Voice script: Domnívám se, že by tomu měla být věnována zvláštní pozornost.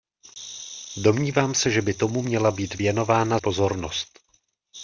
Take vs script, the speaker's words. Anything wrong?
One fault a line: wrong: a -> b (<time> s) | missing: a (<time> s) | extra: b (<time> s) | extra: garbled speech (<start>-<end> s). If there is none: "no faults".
missing: zvláštní (3.4 s)